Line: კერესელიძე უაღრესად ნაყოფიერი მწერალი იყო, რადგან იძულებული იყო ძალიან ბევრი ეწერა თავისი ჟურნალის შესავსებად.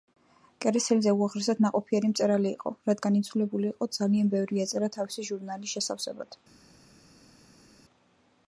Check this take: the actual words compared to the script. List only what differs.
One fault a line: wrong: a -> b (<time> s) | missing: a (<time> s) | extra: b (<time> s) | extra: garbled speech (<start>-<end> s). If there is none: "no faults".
no faults